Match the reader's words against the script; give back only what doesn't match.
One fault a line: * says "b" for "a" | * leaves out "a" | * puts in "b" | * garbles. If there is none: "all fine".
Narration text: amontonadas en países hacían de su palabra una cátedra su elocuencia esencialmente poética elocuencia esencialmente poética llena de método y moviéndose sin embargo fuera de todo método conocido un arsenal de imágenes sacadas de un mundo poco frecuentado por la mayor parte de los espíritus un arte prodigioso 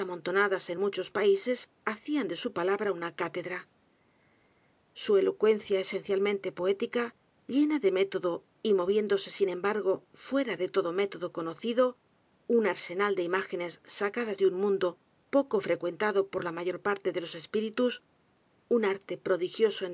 * puts in "muchos"
* leaves out "elocuencia esencialmente poética"